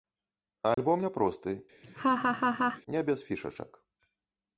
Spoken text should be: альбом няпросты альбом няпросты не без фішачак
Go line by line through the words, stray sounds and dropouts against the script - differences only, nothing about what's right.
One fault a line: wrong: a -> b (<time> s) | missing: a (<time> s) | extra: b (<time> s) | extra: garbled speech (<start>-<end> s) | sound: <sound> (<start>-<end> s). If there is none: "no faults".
sound: dropout (0.7-0.8 s)
missing: альбом няпросты (1.6 s)
sound: laugh (1.8-2.8 s)